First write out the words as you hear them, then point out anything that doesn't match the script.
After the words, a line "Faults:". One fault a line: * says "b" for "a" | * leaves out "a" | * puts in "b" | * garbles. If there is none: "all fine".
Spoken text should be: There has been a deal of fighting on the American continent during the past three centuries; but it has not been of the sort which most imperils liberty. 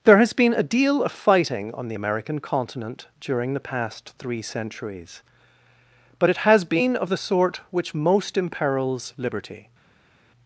There has been a deal of fighting on the American continent during the past three centuries; but it has been of the sort which most imperils liberty.
Faults:
* leaves out "not"